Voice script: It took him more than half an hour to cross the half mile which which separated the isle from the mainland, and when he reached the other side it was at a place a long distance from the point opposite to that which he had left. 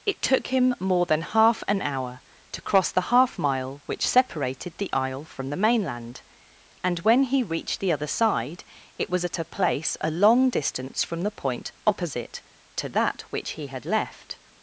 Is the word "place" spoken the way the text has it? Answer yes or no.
yes